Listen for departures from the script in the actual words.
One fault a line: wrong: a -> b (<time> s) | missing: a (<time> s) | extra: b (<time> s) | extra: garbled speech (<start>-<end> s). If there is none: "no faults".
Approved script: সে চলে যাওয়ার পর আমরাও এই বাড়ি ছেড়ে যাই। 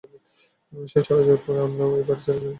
no faults